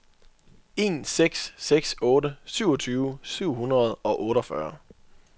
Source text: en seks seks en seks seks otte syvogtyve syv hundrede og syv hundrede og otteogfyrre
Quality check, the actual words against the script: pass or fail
fail